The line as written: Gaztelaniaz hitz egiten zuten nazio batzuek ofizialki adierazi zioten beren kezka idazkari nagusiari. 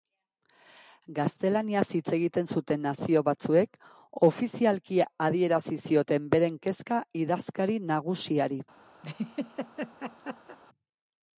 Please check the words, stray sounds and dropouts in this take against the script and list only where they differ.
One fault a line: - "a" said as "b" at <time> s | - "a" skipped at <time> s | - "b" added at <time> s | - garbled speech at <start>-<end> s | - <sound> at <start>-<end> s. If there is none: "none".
- laugh at 9.0-10.6 s